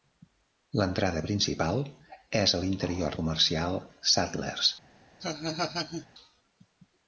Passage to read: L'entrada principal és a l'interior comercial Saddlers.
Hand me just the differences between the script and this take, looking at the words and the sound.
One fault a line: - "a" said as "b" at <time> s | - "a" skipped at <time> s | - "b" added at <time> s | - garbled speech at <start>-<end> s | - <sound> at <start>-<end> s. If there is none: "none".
- laugh at 5.2-6.1 s